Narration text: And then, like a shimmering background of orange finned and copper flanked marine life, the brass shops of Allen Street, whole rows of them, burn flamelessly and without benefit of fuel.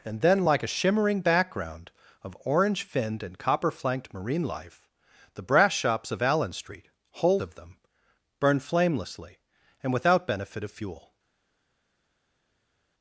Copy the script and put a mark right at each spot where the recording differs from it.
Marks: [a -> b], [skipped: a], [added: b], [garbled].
And then, like a shimmering background of orange finned and copper flanked marine life, the brass shops of Allen Street, whole [skipped: rows] of them, burn flamelessly and without benefit of fuel.